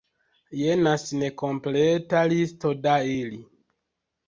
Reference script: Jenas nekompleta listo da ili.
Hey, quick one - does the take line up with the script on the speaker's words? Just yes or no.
yes